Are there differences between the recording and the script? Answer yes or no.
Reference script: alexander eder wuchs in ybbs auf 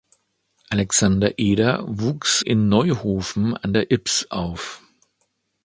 yes